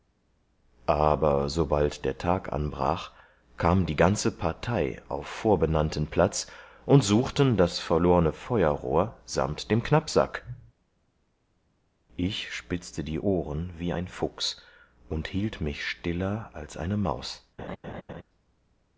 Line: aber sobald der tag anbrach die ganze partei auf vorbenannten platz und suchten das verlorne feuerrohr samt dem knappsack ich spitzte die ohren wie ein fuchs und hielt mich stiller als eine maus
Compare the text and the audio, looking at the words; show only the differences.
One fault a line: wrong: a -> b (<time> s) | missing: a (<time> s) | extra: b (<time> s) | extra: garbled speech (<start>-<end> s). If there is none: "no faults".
extra: kam (3.6 s)